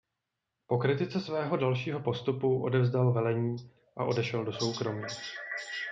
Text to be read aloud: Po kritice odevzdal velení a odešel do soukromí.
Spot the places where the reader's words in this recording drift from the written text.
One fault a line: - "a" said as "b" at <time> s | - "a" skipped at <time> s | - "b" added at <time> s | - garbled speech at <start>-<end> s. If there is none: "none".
- "svého dalšího postupu" added at 1.2 s